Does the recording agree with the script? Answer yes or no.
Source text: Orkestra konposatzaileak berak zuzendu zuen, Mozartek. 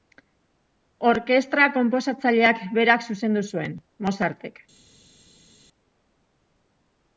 yes